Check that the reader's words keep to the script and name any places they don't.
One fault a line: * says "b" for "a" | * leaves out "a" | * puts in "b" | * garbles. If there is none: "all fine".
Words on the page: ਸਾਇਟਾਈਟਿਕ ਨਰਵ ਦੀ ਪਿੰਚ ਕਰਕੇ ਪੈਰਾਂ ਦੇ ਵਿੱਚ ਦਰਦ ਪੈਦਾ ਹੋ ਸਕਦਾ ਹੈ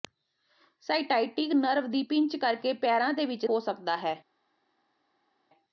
* leaves out "ਦਰਦ ਪੈਦਾ"